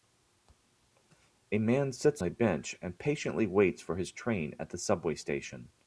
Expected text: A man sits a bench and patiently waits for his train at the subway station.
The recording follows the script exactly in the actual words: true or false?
true